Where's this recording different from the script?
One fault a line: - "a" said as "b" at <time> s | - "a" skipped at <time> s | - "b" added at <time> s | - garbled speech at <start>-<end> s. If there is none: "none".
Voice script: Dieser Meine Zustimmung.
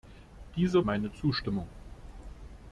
none